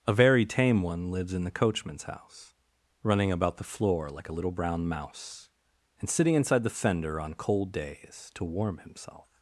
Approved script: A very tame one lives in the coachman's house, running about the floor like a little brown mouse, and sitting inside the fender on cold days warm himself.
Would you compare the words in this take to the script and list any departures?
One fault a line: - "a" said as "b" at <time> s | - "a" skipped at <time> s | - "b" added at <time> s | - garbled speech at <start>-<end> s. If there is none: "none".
- "to" added at 8.3 s